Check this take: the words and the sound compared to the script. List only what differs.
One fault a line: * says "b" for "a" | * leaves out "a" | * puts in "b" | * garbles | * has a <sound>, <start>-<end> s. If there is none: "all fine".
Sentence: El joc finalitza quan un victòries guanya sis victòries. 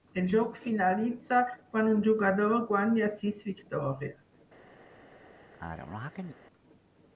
* says "jugador" for "victòries"
* has a sneeze, 5.5-6.3 s